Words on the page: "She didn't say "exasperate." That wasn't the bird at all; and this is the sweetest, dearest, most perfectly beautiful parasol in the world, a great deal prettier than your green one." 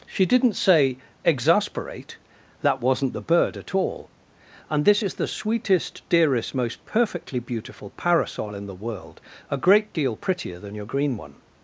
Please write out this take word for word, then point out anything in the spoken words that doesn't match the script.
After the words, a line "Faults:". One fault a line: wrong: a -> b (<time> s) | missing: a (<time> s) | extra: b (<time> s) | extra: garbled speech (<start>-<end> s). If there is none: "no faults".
"She didn't say "exasperate." That wasn't the bird at all; and this is the sweetest, dearest, most perfectly beautiful parasol in the world, a great deal prettier than your green one."
Faults:
no faults